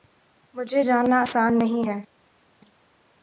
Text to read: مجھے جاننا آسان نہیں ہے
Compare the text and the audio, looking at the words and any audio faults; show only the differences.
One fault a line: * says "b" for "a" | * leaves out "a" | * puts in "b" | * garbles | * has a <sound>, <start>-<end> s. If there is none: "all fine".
all fine